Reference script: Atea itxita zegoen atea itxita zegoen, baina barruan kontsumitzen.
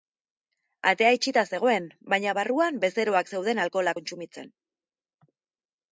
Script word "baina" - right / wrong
wrong